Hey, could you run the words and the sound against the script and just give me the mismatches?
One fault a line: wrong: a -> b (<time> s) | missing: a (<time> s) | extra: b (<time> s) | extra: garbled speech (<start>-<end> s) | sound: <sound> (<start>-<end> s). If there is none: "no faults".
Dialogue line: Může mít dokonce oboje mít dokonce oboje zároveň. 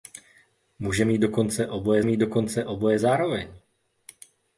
no faults